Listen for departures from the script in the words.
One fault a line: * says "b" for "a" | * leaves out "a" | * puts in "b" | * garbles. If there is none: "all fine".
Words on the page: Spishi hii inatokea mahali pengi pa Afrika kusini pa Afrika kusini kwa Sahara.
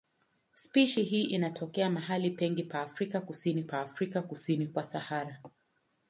all fine